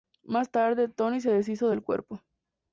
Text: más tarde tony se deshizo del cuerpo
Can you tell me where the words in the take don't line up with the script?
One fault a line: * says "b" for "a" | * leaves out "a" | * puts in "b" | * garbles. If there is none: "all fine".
all fine